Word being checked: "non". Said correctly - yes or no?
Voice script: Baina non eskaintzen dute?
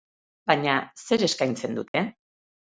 no